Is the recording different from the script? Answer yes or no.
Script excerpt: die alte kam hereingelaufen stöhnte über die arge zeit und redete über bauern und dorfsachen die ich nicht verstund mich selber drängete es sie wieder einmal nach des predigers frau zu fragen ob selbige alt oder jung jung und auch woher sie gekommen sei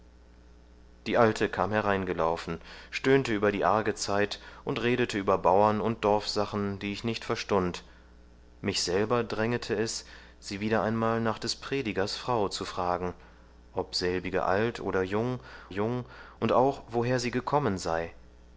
no